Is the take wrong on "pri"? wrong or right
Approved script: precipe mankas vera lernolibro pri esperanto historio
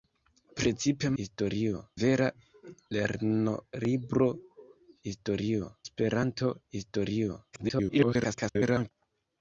wrong